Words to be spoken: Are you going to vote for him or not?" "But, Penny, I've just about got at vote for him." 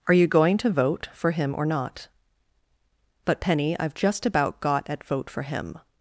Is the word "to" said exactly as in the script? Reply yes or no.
yes